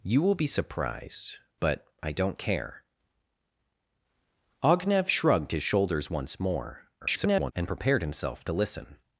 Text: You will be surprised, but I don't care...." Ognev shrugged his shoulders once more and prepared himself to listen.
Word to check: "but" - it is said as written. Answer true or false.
true